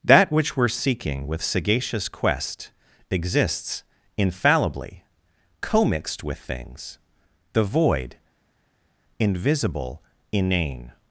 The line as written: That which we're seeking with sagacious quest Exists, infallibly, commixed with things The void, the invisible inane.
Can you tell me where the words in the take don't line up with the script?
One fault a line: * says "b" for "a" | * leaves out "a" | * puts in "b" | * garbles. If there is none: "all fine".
* leaves out "the"